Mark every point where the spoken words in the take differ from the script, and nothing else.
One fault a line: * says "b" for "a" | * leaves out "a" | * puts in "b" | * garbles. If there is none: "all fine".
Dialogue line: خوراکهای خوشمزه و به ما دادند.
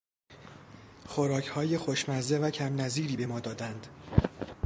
* puts in "کم نظیری"